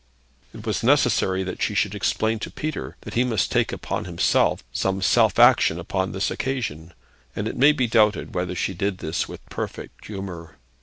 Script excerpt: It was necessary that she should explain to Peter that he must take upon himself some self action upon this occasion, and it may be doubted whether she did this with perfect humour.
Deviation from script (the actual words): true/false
false